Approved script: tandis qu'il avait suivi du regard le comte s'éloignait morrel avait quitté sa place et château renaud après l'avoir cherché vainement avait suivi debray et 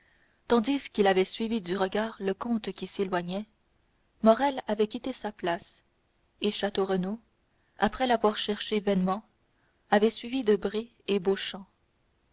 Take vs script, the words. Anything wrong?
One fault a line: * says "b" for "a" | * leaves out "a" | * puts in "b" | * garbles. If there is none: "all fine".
* puts in "qui"